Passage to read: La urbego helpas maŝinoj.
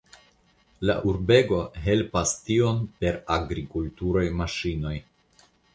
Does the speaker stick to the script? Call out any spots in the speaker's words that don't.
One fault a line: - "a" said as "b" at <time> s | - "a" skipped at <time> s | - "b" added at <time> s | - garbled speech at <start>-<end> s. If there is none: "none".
- "tion per agrikulturaj" added at 2.5 s